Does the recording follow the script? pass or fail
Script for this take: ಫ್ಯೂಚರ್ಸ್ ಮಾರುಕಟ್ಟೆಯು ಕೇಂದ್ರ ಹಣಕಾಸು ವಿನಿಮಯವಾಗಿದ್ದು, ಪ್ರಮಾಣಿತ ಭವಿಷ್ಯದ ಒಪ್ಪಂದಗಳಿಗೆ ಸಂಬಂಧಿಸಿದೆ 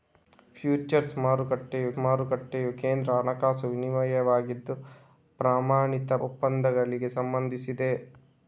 fail